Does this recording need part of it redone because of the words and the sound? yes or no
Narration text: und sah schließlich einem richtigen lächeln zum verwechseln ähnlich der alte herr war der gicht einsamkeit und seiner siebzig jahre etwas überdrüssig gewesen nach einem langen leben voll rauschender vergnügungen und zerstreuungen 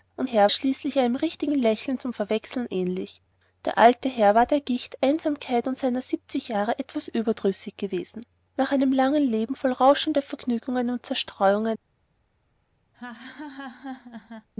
yes